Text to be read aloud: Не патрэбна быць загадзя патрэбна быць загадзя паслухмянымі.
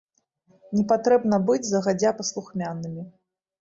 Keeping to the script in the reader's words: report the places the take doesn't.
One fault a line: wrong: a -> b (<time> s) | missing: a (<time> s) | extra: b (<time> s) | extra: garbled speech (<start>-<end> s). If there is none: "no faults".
missing: патрэбна быць загадзя (2.2 s)